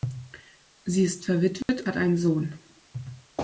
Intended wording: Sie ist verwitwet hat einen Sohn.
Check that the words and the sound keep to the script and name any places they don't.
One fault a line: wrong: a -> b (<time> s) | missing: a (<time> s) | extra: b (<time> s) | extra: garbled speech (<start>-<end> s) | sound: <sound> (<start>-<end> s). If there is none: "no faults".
sound: dropout (1.6-1.7 s)